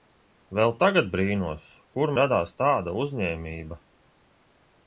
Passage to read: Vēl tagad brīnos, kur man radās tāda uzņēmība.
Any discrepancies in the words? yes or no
yes